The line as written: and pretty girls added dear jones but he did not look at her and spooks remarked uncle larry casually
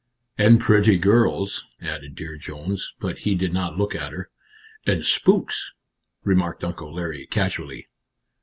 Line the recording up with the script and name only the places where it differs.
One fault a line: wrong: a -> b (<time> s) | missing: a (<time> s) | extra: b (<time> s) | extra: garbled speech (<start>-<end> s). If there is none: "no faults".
no faults